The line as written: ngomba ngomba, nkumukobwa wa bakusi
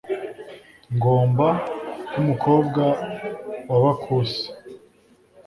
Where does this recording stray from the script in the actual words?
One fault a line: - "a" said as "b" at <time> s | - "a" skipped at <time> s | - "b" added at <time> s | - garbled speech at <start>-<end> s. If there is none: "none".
- "ngomba" skipped at 1.5 s